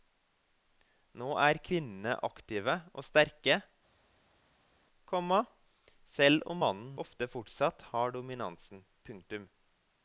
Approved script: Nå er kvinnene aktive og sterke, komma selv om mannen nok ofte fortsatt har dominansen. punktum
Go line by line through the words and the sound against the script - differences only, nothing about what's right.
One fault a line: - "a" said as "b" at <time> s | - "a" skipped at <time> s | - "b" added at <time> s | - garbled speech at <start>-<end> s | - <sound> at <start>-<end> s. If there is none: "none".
- "nok" skipped at 7.0 s